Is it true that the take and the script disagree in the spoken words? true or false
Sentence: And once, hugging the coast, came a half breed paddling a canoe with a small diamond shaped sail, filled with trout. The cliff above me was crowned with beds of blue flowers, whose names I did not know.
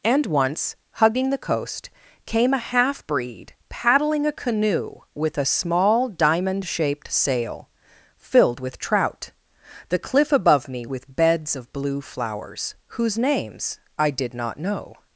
true